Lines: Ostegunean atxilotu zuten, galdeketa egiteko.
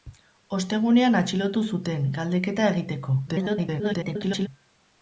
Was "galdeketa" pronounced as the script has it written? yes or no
yes